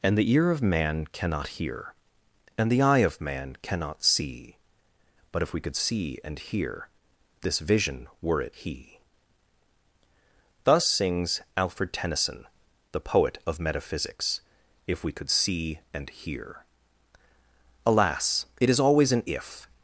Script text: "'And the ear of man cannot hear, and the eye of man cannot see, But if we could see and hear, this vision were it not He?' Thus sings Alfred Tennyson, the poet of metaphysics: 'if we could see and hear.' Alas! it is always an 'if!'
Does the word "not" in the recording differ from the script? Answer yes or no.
yes